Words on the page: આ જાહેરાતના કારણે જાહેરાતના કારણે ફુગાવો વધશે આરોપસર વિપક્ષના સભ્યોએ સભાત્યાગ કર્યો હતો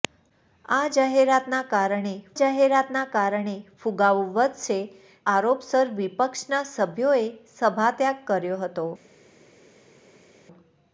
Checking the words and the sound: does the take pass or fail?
pass